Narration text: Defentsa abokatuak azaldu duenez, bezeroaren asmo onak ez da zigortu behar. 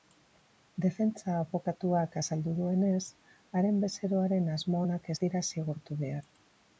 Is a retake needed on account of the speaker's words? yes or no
yes